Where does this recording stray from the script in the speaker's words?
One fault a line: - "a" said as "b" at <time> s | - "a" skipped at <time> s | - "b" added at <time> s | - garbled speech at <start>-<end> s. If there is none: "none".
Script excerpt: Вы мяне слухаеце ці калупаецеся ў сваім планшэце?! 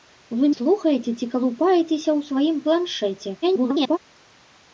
- "мяне" skipped at 0.5 s
- garbled speech at 3.4-4.0 s